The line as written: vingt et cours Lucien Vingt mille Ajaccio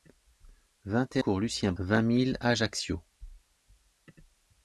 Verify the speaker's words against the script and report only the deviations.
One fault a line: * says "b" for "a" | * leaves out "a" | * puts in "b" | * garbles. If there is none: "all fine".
all fine